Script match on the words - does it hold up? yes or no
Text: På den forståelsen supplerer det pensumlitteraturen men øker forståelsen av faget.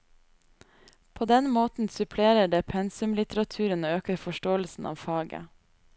no